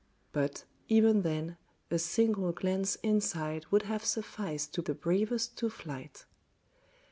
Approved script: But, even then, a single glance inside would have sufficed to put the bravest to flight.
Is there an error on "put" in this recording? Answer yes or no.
yes